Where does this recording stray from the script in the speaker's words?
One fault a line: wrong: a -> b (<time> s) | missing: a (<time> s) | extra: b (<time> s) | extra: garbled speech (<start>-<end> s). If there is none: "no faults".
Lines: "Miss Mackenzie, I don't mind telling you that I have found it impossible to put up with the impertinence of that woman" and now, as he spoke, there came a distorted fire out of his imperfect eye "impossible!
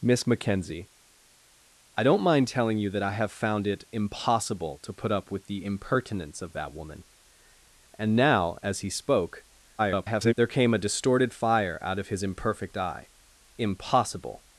extra: garbled speech (9.8-10.3 s)